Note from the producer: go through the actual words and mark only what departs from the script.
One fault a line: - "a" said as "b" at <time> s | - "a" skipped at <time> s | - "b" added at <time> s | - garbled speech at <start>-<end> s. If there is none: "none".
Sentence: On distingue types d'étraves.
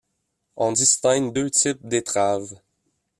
- "deux" added at 1.3 s